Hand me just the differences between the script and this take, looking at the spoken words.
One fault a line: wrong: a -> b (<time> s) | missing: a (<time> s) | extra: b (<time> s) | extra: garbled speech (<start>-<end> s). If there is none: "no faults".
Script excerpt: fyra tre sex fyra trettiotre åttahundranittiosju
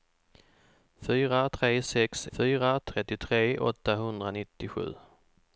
no faults